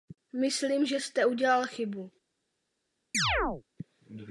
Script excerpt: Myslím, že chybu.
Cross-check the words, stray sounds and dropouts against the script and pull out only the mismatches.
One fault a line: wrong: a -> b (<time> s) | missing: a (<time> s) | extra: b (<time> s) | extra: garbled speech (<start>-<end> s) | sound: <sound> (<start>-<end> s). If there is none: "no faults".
extra: jste udělal (1.0 s)
sound: chirp (3.1-3.6 s)